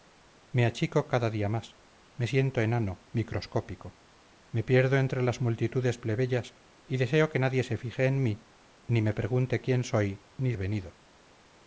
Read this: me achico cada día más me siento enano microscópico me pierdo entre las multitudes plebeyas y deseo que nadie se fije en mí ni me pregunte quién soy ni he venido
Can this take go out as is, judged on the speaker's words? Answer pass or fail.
pass